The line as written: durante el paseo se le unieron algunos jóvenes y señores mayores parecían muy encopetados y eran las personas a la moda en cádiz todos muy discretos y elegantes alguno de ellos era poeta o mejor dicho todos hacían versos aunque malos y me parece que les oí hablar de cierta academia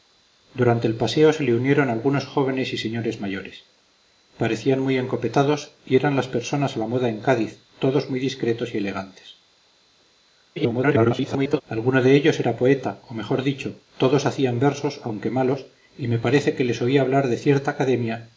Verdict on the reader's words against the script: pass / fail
fail